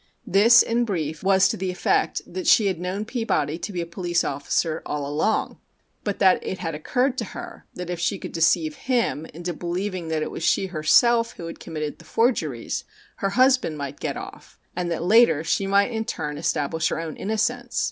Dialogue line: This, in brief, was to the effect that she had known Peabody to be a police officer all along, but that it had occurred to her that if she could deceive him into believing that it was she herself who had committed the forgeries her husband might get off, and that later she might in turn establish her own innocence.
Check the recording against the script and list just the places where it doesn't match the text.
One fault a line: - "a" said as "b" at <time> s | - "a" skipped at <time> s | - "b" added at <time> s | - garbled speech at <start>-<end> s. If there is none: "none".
none